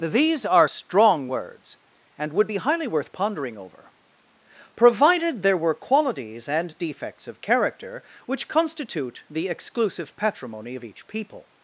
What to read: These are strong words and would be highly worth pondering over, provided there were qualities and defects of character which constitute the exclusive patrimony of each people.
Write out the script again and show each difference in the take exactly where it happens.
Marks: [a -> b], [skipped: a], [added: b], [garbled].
These are strong words and would be highly worth pondering over, provided there were qualities and defects of character which constitute the exclusive patrimony of each people.